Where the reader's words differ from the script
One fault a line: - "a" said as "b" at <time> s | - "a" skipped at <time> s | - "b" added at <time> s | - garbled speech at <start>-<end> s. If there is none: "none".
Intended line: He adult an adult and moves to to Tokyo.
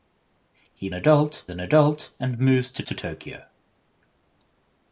none